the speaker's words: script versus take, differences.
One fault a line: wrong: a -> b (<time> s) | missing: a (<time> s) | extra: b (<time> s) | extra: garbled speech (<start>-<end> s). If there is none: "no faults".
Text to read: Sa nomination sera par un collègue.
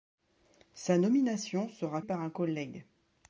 no faults